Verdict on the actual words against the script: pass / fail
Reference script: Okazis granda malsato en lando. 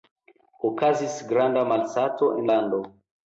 pass